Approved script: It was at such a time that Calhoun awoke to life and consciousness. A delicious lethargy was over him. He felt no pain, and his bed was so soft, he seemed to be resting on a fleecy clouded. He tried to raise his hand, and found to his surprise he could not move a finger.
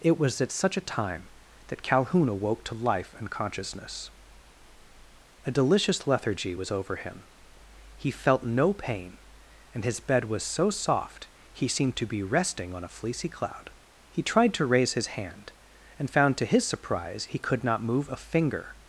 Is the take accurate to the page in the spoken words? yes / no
no